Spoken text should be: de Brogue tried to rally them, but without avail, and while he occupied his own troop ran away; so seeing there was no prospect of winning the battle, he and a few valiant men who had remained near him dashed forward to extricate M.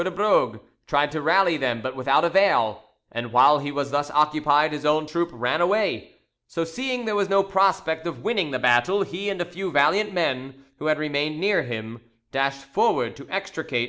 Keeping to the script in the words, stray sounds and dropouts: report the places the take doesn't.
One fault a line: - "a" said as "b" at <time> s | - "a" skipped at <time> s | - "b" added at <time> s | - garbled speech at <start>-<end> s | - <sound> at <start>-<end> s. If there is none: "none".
- "was thus" added at 3.7 s